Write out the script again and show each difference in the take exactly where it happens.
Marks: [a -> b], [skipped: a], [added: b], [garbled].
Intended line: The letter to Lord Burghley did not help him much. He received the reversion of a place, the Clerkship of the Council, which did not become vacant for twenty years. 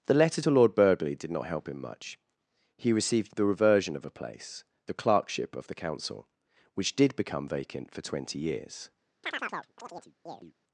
The letter to Lord Burghley did not help him much. He received the reversion of a place, the Clerkship of the Council, which did [skipped: not] become vacant for twenty years.